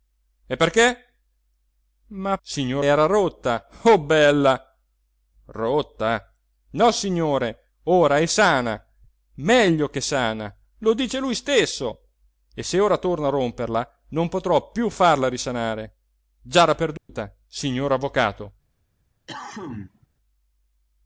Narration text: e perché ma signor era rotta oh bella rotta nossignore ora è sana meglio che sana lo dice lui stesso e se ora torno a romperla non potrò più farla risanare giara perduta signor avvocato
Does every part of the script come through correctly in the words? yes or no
yes